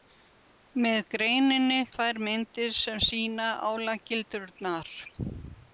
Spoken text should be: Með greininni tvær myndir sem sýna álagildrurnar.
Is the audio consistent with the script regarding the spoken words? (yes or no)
yes